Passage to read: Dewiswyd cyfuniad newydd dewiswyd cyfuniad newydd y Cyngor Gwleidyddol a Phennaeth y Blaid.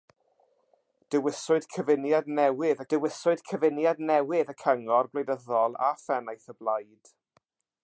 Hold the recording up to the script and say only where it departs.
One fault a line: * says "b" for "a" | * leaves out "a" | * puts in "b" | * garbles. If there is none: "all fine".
all fine